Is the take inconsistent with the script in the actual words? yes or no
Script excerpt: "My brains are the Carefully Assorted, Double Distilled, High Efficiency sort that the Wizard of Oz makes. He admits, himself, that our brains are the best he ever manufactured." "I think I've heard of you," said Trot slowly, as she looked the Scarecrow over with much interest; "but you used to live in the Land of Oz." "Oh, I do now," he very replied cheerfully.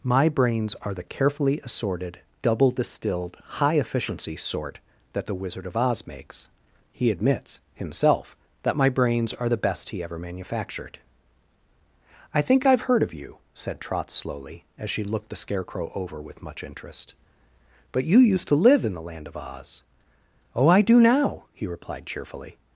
yes